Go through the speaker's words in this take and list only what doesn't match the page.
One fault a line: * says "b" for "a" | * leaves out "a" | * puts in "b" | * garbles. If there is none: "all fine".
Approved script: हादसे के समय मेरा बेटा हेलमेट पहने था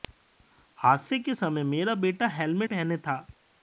all fine